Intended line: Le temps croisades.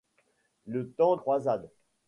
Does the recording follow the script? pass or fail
pass